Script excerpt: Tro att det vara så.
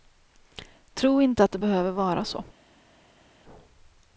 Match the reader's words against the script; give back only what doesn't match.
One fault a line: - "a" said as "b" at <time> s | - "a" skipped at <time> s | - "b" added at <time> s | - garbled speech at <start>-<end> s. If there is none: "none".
- "inte" added at 1.2 s
- "behöver" added at 1.6 s